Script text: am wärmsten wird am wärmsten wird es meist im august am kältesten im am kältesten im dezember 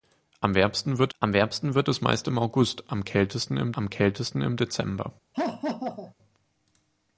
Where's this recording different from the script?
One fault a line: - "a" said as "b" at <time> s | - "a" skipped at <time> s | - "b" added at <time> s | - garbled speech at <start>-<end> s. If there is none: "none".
none